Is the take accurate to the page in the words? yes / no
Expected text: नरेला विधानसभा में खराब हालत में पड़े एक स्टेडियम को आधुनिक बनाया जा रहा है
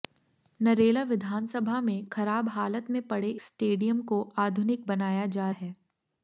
no